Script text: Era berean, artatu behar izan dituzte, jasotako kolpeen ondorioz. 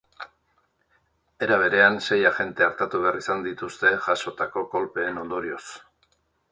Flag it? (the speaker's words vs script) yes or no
yes